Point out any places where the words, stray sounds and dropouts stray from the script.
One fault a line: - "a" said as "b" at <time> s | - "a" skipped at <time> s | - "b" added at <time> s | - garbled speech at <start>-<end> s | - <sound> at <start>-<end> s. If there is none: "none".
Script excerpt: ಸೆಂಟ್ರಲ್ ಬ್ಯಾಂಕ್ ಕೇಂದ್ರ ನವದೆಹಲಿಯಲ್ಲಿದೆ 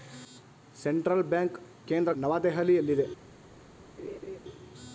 - laugh at 4.0-4.4 s